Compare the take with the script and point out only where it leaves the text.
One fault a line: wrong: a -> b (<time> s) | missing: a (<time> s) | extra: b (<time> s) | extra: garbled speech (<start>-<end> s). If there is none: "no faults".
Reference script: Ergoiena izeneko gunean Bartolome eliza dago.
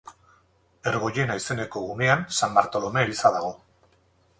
extra: San (2.4 s)